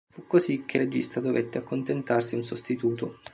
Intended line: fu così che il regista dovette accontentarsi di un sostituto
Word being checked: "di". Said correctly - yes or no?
no